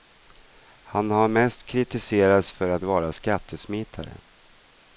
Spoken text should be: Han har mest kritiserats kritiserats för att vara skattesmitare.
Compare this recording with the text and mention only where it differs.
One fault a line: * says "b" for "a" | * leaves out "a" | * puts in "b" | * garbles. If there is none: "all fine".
* leaves out "kritiserats"